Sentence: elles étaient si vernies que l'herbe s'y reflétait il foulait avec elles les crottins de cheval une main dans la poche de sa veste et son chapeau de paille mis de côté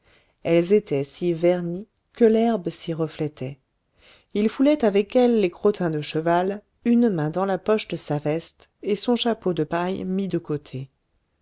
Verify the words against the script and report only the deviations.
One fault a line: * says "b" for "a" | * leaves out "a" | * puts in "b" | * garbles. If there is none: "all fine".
all fine